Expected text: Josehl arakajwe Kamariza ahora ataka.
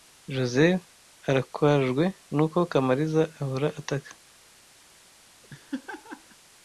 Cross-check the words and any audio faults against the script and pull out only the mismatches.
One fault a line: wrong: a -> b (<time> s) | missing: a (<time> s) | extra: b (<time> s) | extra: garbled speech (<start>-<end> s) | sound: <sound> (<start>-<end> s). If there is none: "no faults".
extra: nuko (2.4 s)
sound: laugh (5.4-6.4 s)